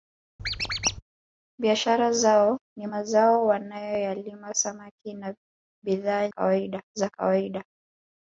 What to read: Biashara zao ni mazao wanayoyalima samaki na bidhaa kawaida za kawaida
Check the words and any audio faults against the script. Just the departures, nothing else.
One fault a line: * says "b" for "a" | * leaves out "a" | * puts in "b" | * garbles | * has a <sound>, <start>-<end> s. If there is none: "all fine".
* has a squeak, 0.4-1.0 s